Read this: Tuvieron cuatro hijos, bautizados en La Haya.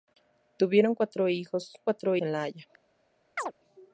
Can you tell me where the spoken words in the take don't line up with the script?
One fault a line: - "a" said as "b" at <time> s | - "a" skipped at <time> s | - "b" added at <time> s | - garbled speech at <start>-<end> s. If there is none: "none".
- "bautizados" said as "cuatro" at 1.8 s